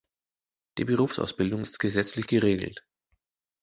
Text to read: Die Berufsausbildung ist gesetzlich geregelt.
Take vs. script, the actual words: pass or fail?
pass